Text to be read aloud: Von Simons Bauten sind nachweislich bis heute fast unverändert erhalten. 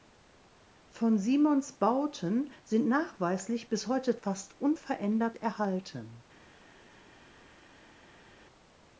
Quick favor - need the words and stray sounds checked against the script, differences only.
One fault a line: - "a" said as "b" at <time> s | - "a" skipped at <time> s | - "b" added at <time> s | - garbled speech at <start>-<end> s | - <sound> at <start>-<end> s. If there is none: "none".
none